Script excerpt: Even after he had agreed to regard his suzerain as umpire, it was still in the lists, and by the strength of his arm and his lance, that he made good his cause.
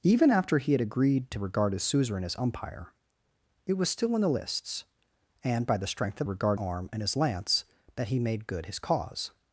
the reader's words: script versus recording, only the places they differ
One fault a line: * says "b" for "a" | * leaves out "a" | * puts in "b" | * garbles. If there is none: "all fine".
* says "regard" for "his"